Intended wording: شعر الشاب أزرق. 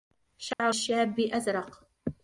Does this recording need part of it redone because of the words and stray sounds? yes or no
yes